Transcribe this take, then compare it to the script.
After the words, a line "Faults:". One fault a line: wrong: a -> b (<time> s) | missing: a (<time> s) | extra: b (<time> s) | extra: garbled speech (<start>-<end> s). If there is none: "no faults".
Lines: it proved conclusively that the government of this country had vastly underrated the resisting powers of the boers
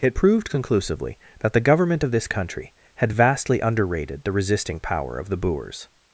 it proved conclusively that the government of this country had vastly underrated the resisting power of the boers
Faults:
wrong: powers -> power (4.8 s)